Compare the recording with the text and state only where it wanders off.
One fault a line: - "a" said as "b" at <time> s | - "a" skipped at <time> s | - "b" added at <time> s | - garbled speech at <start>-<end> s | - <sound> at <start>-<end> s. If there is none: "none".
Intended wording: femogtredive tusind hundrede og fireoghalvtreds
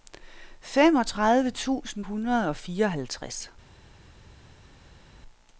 none